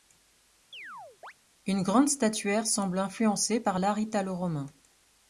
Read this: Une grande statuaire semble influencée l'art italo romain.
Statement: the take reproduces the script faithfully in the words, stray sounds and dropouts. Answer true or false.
false